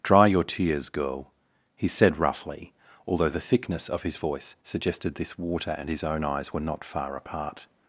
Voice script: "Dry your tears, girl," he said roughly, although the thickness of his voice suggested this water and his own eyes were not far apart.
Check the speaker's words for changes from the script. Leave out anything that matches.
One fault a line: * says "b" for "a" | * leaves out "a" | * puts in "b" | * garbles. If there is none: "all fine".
all fine